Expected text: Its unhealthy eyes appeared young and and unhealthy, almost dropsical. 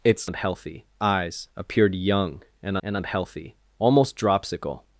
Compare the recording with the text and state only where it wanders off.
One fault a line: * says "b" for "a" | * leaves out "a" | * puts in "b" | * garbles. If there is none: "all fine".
all fine